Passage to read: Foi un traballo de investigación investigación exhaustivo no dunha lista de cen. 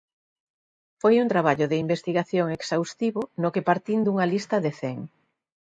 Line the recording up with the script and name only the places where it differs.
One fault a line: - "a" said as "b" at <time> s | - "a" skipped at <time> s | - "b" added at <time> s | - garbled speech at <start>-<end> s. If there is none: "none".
- "investigación" skipped at 2.5 s
- "que partín" added at 3.5 s